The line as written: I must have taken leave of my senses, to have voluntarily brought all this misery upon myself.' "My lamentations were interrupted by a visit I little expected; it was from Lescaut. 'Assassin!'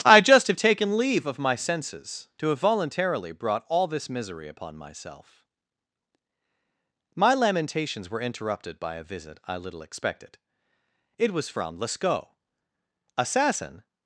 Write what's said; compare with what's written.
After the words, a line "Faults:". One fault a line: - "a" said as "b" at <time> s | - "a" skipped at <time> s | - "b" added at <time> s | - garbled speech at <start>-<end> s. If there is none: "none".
I just have taken leave of my senses, to have voluntarily brought all this misery upon myself.' "My lamentations were interrupted by a visit I little expected; it was from Lescaut. 'Assassin!'
Faults:
- "must" said as "just" at 0.2 s